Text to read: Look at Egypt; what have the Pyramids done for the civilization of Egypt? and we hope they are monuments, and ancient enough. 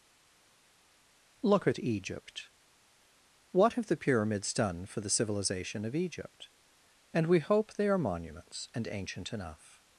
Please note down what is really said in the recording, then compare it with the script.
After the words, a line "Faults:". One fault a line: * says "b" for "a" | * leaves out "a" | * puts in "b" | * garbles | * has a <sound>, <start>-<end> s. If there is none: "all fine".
Look at Egypt; what have the Pyramids done for the civilization of Egypt? and we hope they are monuments, and ancient enough.
Faults:
all fine